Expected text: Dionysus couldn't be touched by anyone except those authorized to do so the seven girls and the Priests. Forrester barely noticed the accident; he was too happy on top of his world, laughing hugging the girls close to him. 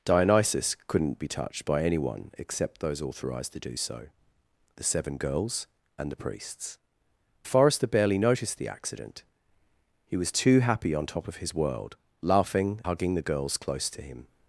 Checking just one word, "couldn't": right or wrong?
right